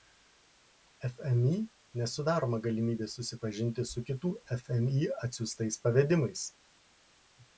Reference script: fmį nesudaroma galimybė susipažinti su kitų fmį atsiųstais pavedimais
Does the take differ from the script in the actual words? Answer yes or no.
no